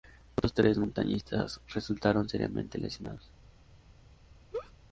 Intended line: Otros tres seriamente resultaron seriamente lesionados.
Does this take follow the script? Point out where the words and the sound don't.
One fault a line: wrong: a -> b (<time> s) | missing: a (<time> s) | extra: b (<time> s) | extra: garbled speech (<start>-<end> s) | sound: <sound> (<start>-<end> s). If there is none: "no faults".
wrong: seriamente -> montañistas (0.8 s)
sound: laugh (4.5-4.7 s)